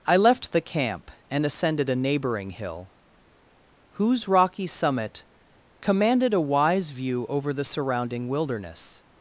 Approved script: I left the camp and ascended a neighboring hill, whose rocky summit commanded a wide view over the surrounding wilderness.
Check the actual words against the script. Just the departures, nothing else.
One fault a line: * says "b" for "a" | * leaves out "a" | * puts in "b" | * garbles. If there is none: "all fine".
* says "wise" for "wide"